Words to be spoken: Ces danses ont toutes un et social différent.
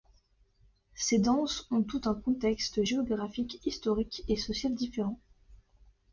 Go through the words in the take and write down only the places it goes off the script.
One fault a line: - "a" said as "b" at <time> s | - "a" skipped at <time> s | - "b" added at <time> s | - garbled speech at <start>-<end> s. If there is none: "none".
- "contexte géographique historique" added at 2.1 s